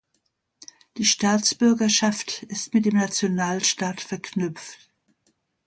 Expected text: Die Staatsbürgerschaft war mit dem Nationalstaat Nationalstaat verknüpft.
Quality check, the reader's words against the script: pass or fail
fail